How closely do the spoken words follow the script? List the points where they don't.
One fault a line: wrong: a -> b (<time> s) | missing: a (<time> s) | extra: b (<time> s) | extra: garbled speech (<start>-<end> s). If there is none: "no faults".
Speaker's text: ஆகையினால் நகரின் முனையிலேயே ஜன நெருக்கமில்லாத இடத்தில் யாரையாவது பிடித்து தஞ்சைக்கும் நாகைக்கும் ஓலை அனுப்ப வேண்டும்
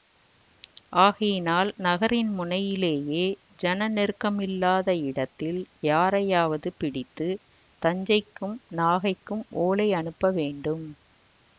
no faults